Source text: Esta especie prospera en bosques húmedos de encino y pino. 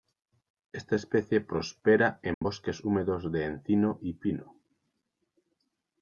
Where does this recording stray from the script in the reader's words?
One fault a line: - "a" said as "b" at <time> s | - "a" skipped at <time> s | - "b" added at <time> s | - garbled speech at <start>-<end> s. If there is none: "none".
none